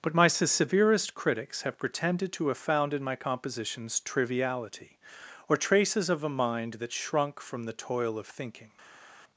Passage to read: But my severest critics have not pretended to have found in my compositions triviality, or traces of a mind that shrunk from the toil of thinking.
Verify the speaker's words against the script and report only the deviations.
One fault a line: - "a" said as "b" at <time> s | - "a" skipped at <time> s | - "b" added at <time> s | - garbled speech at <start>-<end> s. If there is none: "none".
- "not" skipped at 1.8 s